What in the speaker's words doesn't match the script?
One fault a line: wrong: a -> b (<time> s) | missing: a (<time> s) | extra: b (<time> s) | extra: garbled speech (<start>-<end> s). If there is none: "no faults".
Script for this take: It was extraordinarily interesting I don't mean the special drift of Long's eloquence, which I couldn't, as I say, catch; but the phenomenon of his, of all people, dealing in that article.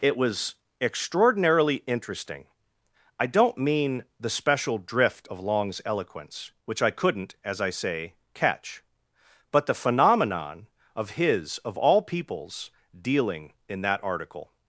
wrong: people -> peoples (12.0 s)